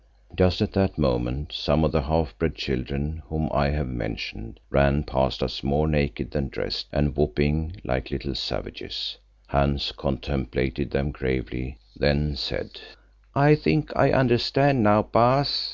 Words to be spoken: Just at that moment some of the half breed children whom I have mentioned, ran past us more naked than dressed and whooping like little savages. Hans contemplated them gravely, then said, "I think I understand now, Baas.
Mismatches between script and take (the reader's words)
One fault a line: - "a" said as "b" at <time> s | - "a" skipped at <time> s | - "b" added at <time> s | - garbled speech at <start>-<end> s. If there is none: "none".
none